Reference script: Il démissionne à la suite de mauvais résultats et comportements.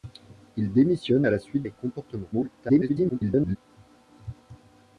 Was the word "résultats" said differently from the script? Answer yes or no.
yes